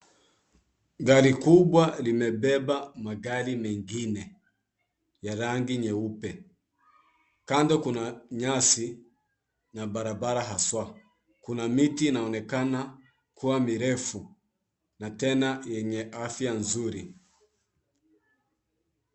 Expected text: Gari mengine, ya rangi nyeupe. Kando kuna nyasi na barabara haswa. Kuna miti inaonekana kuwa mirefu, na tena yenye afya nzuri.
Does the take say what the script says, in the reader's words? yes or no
no